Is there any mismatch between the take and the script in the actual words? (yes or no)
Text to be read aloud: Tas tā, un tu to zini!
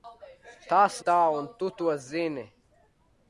no